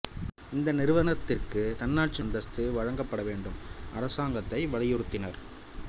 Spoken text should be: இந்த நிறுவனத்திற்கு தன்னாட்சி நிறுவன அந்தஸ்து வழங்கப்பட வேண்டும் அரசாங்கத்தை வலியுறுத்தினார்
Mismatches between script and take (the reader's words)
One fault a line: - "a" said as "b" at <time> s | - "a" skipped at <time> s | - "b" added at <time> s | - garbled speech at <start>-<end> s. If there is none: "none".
- "நிறுவன" skipped at 2.2 s